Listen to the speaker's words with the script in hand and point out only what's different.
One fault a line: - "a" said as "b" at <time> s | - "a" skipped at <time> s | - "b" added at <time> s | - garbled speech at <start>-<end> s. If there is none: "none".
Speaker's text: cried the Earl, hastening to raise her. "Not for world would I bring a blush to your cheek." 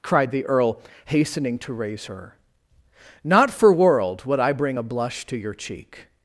none